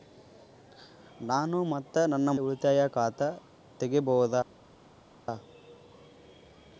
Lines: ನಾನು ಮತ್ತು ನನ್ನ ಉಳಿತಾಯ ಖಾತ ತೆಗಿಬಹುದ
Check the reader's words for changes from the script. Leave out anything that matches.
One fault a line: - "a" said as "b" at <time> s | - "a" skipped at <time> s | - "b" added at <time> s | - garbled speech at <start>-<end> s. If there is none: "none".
none